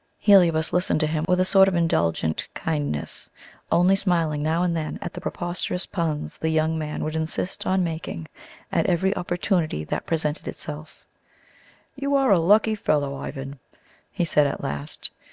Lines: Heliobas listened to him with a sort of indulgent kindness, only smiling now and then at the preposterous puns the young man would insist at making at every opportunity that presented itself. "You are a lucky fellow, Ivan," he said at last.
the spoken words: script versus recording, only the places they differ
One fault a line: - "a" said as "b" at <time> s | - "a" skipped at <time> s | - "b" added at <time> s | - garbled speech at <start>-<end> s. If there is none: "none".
- "at" said as "on" at 7.7 s